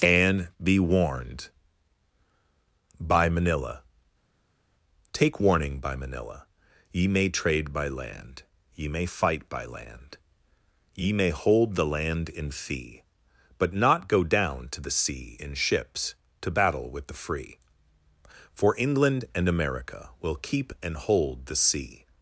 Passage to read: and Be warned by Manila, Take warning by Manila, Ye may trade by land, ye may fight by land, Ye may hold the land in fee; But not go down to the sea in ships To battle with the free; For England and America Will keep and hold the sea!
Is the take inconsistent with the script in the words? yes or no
no